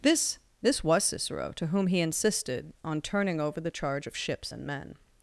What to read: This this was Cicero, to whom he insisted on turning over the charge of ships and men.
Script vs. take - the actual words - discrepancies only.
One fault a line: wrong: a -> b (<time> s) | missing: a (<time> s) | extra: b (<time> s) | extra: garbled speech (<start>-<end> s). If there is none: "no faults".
no faults